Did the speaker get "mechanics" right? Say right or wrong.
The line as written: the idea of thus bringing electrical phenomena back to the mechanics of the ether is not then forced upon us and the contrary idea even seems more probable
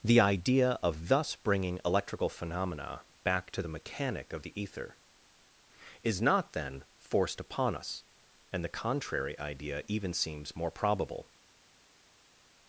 wrong